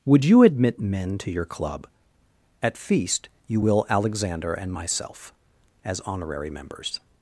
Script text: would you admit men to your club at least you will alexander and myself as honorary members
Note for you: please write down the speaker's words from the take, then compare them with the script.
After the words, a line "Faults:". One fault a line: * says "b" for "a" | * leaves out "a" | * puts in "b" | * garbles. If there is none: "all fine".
would you admit men to your club at feast you will alexander and myself as honorary members
Faults:
* says "feast" for "least"